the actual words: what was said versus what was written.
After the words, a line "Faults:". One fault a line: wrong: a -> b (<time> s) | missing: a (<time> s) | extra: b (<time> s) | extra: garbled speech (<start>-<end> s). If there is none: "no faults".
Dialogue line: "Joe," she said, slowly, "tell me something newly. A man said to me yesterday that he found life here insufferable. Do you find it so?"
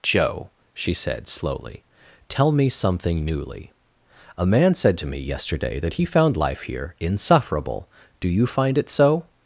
"Joe," she said, slowly, "tell me something newly. A man said to me yesterday that he found life here insufferable. Do you find it so?"
Faults:
no faults